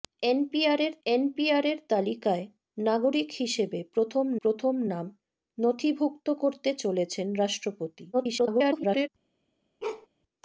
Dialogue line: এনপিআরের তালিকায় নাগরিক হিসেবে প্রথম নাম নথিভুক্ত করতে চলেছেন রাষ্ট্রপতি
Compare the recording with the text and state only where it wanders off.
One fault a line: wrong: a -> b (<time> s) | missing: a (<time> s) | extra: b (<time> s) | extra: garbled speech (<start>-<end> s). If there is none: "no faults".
extra: এনপিআরের (1.1 s)
extra: প্রথম (4.4 s)
extra: garbled speech (8.1-9.1 s)